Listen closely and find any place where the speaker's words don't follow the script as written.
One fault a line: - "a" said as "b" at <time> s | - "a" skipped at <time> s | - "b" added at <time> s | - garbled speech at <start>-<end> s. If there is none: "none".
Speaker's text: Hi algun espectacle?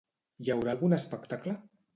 - "haurà" added at 0.5 s